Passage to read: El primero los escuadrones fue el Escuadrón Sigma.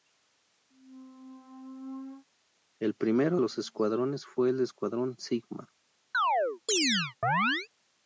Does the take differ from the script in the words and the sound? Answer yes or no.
yes